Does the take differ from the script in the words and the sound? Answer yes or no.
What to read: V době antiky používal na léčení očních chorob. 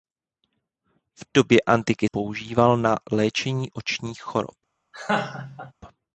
yes